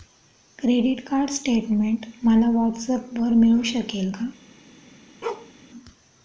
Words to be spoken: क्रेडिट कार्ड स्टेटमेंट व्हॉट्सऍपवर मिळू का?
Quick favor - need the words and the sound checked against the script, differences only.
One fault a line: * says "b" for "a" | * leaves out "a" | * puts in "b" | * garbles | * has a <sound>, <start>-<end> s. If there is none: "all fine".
* puts in "मला"
* puts in "शकेल"
* has a bark, 5.2-5.5 s